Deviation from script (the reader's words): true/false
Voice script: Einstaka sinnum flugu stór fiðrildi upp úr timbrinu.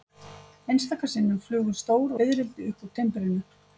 false